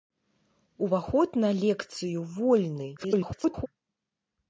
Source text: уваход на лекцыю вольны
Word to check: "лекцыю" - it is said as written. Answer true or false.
true